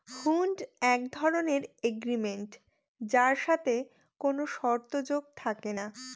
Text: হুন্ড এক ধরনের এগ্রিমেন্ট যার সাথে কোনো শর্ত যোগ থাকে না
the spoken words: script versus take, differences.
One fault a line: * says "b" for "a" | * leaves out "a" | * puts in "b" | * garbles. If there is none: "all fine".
all fine